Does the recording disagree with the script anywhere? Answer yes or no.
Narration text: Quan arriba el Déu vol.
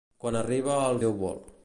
no